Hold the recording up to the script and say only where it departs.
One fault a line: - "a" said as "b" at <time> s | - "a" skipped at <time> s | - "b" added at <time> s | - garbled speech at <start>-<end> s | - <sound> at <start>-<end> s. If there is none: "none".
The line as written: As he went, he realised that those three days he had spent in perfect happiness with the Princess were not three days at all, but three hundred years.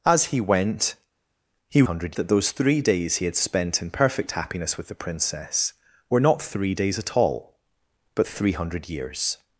- "realised" said as "hundred" at 1.8 s